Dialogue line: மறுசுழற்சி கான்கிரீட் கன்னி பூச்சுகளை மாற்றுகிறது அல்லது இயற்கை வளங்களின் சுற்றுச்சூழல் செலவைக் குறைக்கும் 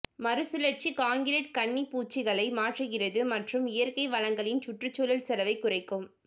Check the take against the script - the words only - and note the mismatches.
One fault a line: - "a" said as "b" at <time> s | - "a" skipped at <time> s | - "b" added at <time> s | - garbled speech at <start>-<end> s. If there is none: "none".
- "அல்லது" said as "மற்றும்" at 3.3 s